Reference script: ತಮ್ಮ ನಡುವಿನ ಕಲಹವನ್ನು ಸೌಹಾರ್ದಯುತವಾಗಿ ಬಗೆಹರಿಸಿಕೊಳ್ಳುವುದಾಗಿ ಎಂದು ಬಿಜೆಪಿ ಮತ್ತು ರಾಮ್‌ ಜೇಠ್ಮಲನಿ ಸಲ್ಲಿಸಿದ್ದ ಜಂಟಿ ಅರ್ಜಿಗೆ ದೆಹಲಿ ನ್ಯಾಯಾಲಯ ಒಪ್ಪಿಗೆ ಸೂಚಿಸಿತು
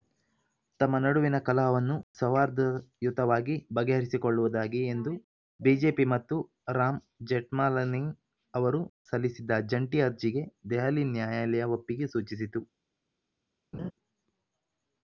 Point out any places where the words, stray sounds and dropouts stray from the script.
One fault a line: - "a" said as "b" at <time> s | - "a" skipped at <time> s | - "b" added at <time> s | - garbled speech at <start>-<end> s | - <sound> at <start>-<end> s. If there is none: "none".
- "ಅವರು" added at 8.5 s
- laugh at 13.7-13.9 s